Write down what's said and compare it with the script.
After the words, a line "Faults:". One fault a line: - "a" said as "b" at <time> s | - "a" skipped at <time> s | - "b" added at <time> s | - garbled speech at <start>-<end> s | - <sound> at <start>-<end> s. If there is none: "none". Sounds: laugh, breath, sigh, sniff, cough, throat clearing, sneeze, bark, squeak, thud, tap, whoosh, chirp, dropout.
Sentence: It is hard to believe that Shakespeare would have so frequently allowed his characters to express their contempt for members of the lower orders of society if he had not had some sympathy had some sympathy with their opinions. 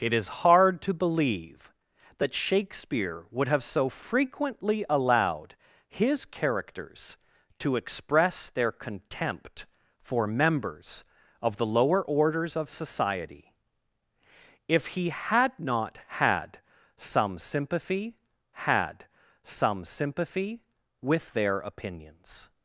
It is hard to believe that Shakespeare would have so frequently allowed his characters to express their contempt for members of the lower orders of society if he had not had some sympathy had some sympathy with their opinions.
Faults:
none